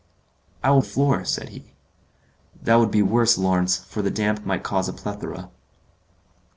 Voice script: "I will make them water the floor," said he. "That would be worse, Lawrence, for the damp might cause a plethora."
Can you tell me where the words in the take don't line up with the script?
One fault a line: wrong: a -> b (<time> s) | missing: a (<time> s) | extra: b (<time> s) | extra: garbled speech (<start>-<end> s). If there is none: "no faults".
missing: make them water (0.8 s)